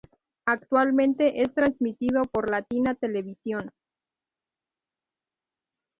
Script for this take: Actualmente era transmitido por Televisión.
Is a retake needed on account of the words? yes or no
yes